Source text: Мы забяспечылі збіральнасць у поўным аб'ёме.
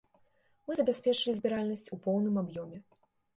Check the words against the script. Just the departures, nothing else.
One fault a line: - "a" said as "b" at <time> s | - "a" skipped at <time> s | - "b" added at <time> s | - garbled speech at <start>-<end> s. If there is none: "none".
none